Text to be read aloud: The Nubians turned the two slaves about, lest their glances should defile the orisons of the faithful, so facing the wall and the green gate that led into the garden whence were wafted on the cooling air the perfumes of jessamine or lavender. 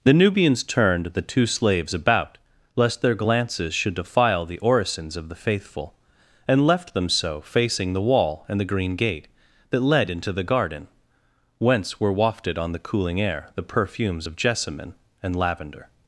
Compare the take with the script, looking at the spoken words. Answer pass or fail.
fail